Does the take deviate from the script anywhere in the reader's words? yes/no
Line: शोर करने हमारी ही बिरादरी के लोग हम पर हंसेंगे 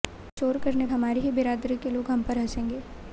no